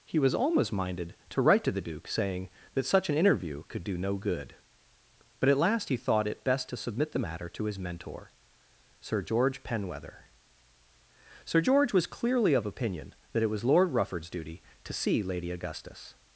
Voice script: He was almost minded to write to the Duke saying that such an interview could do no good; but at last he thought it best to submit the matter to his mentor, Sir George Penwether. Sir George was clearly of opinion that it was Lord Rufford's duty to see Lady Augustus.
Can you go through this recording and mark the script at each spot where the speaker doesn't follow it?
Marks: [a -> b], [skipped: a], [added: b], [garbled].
He was almost minded to write to the Duke saying that such an interview could do no good; but at last he thought it best to submit the matter to his mentor, Sir George Penwether. Sir George was clearly of opinion that it was Lord Rufford's duty to see Lady Augustus.